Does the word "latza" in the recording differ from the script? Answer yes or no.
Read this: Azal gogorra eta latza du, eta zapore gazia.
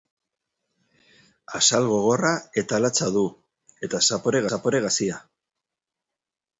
no